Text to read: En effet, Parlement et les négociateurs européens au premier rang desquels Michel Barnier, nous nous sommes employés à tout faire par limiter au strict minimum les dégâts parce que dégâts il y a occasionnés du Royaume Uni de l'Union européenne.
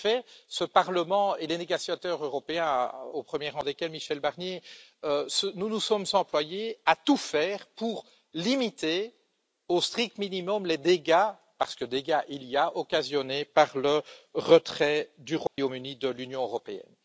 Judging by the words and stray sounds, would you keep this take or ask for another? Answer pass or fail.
fail